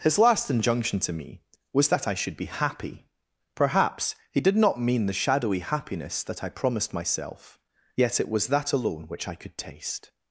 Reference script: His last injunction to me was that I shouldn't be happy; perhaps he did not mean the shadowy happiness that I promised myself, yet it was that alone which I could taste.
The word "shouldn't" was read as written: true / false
false